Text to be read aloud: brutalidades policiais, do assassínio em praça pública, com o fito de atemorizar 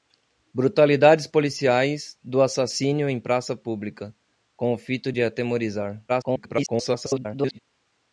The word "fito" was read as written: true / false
true